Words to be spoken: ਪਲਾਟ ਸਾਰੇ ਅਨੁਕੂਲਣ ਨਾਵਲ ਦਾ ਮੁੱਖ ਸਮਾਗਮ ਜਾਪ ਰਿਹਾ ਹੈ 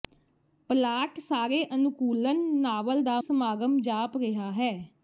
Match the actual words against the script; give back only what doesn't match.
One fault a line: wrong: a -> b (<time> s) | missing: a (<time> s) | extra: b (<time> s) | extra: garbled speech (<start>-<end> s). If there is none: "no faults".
missing: ਮੁੱਖ (3.2 s)